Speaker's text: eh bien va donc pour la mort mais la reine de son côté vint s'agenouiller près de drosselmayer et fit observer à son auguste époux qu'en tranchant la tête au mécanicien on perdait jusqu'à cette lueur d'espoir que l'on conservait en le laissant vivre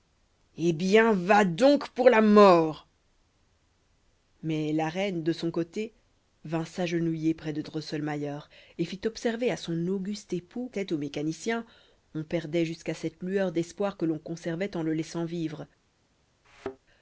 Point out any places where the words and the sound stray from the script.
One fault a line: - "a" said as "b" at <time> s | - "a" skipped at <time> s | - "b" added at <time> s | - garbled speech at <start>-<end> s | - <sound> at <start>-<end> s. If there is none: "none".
- "qu'en tranchant la" skipped at 10.7 s
- thud at 16.4-16.8 s